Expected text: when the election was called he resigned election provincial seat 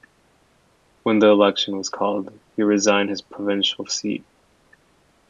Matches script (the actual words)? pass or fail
fail